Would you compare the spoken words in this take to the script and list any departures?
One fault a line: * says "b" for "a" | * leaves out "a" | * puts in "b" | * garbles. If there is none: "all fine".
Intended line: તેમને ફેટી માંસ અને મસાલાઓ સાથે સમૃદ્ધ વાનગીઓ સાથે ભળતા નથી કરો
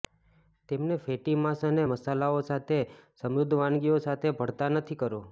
all fine